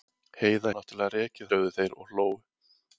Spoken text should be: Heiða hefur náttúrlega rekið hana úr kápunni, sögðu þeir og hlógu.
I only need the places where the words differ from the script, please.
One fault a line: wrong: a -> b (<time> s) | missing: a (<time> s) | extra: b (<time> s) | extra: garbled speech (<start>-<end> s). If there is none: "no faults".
missing: hefur (0.7 s)
missing: hana úr kápunni (1.5 s)